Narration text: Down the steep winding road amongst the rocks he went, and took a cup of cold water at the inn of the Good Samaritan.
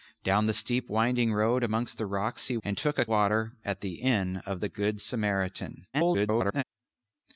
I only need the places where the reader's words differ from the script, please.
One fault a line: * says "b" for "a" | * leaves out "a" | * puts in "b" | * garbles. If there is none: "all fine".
* leaves out "went"
* leaves out "cup of cold"
* garbles